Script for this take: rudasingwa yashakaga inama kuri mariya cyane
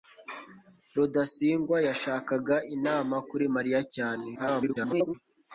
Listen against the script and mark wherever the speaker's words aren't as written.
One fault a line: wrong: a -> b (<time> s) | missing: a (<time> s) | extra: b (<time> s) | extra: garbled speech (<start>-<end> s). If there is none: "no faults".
extra: garbled speech (4.3-5.1 s)